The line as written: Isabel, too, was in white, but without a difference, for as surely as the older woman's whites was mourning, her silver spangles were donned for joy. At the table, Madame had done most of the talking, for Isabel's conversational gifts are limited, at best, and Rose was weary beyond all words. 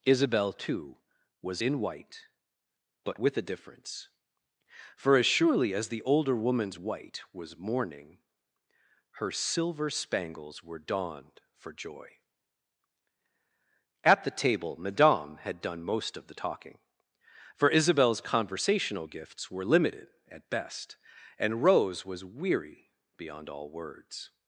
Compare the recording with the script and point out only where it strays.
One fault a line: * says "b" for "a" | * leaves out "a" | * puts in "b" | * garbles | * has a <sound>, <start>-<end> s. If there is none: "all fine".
* says "with" for "without"
* says "white" for "whites"
* says "were" for "are"